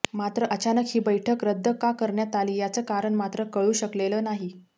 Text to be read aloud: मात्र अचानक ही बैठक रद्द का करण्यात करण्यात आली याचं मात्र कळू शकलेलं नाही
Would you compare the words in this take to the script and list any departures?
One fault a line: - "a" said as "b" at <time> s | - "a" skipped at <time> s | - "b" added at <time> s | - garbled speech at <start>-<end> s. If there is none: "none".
- "करण्यात" skipped at 2.4 s
- "कारण" added at 2.9 s